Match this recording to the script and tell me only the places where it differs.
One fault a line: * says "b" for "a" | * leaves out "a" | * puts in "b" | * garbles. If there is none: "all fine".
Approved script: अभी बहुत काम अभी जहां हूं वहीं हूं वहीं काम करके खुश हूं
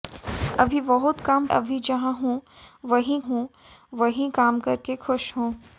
all fine